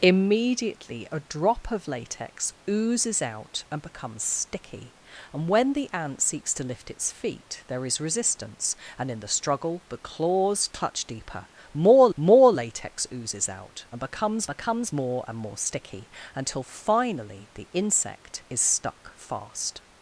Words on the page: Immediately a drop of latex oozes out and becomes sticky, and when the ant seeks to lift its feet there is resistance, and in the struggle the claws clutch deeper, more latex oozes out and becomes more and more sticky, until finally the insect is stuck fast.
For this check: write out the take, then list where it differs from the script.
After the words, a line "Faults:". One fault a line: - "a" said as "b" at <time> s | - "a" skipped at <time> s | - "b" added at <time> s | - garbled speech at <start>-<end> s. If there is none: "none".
Immediately a drop of latex oozes out and becomes sticky, and when the ant seeks to lift its feet there is resistance, and in the struggle the claws clutch deeper, more more latex oozes out and becomes becomes more and more sticky, until finally the insect is stuck fast.
Faults:
- "more" added at 12.1 s
- "becomes" added at 14.5 s